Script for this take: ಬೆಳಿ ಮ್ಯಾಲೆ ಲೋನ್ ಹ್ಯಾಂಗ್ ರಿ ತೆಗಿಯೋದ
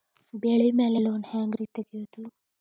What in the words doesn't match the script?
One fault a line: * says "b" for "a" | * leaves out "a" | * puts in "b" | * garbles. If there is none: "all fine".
all fine